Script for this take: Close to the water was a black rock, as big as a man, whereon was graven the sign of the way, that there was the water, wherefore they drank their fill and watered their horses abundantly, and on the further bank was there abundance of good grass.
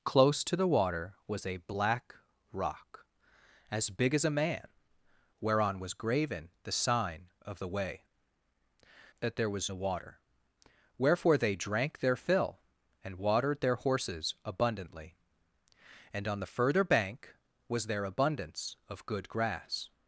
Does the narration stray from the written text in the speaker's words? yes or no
no